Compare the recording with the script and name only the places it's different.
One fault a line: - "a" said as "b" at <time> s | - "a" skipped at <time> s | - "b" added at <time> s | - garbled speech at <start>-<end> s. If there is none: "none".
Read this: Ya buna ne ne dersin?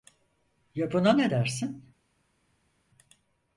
- "ne" skipped at 1.3 s